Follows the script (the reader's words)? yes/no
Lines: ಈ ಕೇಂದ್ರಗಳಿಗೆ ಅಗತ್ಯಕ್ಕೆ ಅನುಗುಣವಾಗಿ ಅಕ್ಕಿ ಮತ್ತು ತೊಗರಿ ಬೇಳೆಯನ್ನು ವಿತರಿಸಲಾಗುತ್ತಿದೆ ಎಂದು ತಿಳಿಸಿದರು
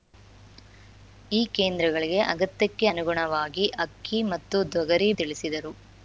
no